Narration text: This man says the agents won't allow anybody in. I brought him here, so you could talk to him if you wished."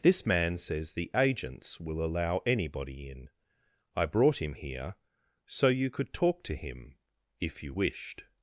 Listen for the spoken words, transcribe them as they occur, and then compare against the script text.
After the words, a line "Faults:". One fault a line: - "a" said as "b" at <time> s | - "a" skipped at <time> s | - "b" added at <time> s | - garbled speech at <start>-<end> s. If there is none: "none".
This man says the agents will allow anybody in. I brought him here, so you could talk to him if you wished."
Faults:
- "won't" said as "will" at 1.8 s